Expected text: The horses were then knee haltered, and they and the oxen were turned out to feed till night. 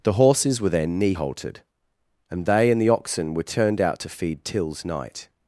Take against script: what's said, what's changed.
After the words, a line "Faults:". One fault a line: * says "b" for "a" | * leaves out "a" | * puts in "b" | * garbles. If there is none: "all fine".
The horses were then knee haltered, and they and the oxen were turned out to feed tills night.
Faults:
* says "tills" for "till"